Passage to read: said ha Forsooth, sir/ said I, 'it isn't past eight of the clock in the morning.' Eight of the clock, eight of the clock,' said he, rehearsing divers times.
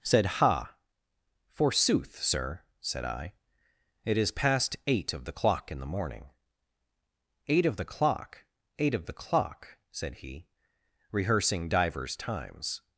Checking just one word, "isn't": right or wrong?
wrong